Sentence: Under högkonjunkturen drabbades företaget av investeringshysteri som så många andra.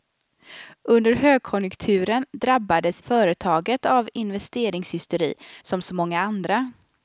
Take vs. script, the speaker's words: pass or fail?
pass